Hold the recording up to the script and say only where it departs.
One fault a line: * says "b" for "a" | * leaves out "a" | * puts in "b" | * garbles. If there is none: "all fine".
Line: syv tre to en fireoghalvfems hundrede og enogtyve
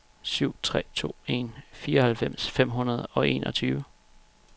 * puts in "fem"